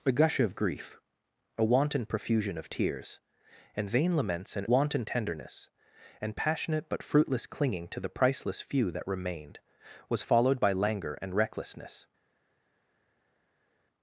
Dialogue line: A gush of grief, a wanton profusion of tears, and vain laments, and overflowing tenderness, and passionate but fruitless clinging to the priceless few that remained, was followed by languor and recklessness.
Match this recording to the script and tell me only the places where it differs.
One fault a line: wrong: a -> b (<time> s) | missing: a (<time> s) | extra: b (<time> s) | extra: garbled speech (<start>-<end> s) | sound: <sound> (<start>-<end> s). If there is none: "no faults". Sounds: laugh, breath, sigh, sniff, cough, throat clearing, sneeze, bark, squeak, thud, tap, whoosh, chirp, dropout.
wrong: overflowing -> wanton (4.6 s)